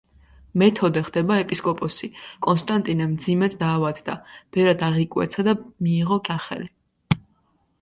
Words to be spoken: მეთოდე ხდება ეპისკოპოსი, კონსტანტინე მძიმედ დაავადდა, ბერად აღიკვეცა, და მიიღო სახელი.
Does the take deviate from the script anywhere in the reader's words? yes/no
no